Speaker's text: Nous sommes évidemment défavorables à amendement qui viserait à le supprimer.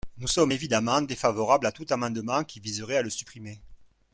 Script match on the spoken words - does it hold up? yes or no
no